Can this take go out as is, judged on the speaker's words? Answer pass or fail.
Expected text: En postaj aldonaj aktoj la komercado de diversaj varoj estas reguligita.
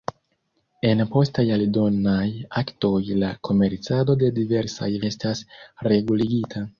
fail